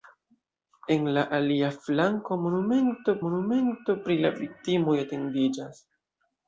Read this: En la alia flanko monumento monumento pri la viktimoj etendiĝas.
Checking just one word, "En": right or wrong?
right